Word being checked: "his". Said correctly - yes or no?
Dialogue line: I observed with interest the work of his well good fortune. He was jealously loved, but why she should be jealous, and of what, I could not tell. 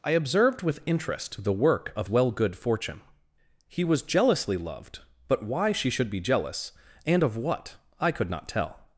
no